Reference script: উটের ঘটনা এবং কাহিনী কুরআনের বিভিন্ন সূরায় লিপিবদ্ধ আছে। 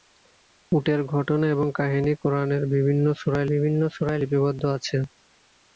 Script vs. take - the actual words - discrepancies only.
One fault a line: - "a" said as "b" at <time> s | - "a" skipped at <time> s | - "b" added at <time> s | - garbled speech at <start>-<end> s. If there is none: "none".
- "বিভিন্ন সূরায়" added at 3.5 s